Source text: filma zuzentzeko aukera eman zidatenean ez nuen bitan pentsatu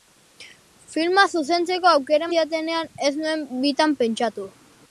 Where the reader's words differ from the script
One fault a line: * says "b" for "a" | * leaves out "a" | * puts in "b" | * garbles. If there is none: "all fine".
* leaves out "eman"